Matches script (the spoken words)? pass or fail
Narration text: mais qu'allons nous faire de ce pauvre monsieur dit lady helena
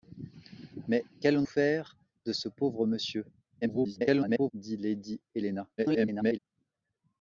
fail